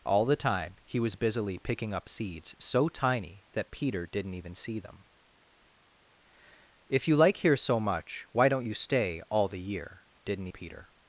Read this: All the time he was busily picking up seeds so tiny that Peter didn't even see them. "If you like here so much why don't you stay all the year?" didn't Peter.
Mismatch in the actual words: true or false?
false